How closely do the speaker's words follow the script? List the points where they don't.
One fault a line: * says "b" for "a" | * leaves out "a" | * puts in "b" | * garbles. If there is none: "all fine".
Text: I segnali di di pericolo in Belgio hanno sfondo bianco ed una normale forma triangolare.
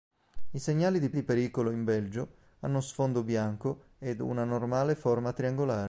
all fine